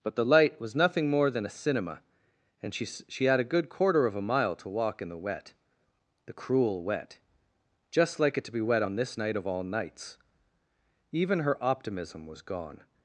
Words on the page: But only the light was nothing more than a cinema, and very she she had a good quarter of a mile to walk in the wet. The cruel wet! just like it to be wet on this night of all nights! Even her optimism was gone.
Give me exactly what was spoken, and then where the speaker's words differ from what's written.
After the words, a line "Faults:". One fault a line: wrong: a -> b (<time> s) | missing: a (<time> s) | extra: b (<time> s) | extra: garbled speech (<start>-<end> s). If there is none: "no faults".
But the light was nothing more than a cinema, and she she had a good quarter of a mile to walk in the wet. The cruel wet! just like it to be wet on this night of all nights! Even her optimism was gone.
Faults:
missing: only (0.1 s)
missing: very (2.7 s)